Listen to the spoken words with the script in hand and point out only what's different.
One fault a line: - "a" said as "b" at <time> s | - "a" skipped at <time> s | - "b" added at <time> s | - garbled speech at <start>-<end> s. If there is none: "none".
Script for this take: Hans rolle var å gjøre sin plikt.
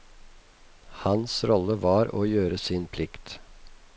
none